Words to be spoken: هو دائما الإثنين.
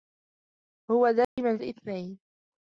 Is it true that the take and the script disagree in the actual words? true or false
false